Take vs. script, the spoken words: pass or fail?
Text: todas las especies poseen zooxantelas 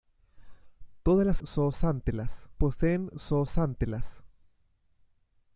fail